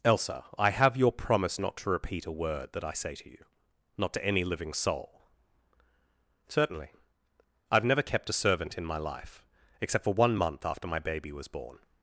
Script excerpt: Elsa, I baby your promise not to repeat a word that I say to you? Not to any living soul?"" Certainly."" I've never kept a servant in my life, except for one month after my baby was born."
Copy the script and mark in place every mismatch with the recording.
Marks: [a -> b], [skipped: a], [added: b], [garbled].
Elsa, I [baby -> have] your promise not to repeat a word that I say to you? Not to any living soul?"" Certainly."" I've never kept a servant in my life, except for one month after my baby was born."